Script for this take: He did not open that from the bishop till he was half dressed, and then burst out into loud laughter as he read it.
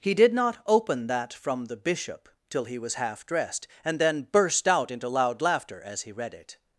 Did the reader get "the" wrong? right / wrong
right